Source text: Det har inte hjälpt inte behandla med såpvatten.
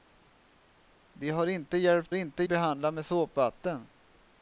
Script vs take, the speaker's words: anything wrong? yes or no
no